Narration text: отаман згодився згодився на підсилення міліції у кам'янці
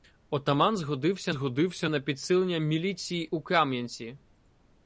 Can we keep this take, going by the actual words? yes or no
yes